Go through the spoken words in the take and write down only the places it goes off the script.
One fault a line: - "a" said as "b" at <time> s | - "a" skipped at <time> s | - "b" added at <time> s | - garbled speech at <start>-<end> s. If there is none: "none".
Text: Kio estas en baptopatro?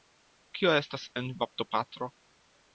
none